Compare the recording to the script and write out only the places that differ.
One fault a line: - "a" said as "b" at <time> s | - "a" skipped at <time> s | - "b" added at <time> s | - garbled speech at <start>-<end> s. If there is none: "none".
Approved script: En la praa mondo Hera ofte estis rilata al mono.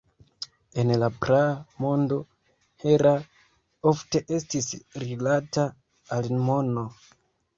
none